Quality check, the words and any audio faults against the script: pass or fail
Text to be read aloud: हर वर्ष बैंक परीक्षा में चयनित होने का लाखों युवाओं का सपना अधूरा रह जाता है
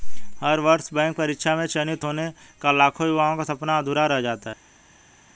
pass